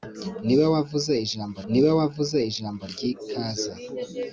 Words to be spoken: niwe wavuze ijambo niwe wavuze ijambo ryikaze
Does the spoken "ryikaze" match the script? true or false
true